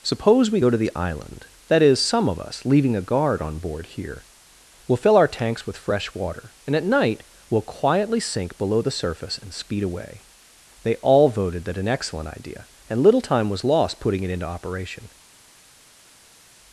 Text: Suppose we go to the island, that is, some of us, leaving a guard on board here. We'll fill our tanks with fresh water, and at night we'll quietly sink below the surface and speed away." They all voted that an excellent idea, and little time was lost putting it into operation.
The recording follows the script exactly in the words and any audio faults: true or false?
true